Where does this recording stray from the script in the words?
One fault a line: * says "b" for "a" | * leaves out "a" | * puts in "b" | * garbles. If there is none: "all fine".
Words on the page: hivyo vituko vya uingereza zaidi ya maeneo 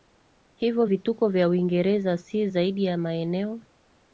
* puts in "si"